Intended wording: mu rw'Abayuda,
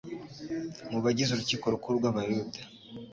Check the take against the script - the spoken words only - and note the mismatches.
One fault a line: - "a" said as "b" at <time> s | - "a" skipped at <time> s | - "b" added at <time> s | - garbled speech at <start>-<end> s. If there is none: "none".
- "bagize Urukiko Rukuru" added at 1.0 s